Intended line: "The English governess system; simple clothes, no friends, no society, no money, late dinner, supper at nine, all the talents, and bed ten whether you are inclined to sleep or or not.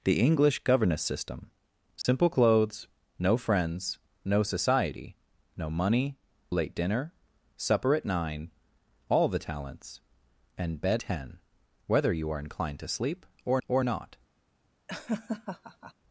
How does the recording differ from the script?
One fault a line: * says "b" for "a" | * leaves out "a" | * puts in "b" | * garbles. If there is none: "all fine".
all fine